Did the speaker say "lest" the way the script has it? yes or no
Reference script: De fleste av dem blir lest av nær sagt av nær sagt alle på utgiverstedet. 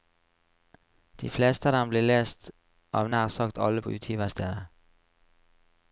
yes